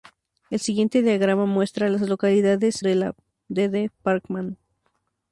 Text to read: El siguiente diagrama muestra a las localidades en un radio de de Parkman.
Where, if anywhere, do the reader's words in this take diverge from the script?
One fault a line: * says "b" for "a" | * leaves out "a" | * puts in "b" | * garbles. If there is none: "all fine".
* leaves out "en un radio"